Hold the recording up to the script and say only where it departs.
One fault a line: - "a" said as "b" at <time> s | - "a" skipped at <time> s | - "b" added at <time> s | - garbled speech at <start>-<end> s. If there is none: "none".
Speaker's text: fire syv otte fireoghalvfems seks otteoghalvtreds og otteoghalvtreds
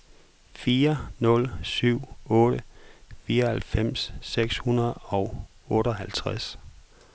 - "nul" added at 1.2 s
- "otteoghalvtreds" said as "hundrede" at 4.6 s